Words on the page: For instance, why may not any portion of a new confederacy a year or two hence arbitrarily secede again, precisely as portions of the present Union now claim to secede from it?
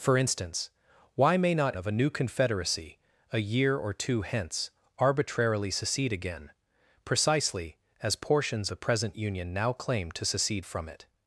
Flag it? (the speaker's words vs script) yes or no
yes